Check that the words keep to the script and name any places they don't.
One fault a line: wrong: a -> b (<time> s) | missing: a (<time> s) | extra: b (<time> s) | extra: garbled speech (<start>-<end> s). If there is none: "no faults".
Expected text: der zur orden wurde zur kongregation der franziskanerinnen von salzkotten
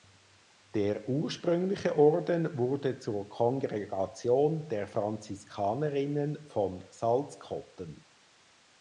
wrong: zur -> ursprüngliche (1.1 s)